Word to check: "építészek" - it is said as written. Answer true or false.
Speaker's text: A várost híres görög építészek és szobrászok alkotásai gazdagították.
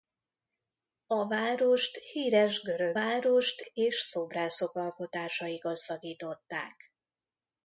false